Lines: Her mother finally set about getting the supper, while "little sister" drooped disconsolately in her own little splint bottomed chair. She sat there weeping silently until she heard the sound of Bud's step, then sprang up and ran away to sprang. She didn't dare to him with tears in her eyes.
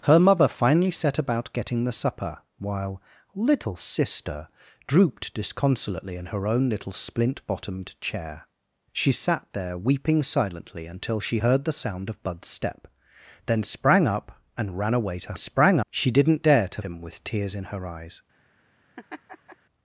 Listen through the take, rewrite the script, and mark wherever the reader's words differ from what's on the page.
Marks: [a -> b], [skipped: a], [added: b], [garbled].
Her mother finally set about getting the supper, while "little sister" drooped disconsolately in her own little splint bottomed chair. She sat there weeping silently until she heard the sound of Bud's step, then sprang up and ran away to sprang. She didn't dare to him with tears in her eyes.